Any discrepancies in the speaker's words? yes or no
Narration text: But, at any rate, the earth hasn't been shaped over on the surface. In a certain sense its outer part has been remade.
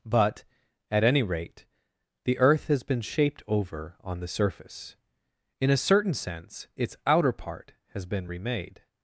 yes